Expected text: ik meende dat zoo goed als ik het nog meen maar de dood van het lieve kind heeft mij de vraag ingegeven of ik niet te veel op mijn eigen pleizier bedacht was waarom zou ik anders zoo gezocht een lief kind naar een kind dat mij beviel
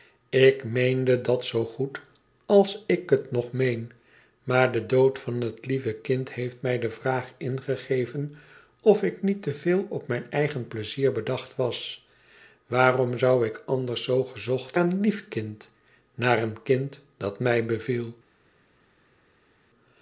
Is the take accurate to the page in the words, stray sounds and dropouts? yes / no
yes